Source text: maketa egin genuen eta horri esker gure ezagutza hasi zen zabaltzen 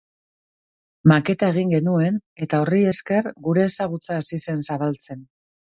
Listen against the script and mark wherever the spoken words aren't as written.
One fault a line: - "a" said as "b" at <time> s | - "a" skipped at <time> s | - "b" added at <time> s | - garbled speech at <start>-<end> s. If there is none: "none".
none